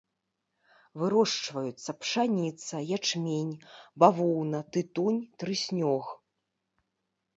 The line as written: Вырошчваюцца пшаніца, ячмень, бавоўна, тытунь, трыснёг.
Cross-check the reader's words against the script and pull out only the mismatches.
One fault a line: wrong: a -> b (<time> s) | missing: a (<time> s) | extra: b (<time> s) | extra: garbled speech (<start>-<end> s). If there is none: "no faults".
no faults